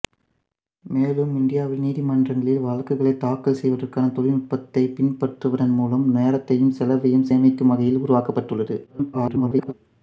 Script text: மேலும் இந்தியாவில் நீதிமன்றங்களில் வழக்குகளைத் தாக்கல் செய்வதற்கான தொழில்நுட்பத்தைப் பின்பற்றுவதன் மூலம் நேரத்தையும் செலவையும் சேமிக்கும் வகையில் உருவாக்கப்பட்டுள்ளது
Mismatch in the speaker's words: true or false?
true